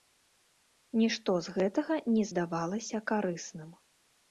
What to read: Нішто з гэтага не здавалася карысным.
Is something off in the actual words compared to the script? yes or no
no